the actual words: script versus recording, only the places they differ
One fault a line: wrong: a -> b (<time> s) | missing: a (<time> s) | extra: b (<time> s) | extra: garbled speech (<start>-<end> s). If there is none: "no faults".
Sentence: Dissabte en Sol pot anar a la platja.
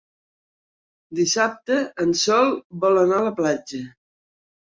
wrong: pot -> vol (2.9 s)